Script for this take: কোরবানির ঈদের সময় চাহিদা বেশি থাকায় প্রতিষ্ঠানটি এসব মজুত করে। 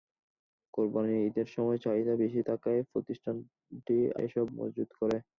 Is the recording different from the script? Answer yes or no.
no